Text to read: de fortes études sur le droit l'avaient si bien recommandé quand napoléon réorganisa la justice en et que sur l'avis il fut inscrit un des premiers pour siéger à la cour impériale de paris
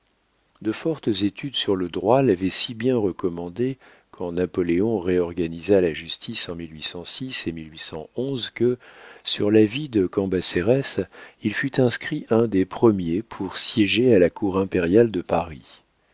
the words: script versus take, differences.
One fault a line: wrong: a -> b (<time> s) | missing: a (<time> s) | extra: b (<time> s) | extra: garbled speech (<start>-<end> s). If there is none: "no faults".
extra: de cambacérès (9.9 s)